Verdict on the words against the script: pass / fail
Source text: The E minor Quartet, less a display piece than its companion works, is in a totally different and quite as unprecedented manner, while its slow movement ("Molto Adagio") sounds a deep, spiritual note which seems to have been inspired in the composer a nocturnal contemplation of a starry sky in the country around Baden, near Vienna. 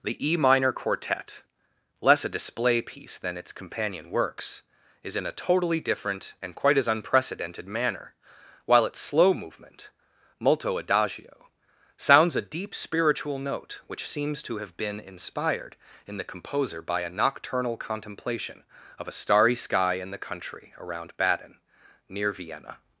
fail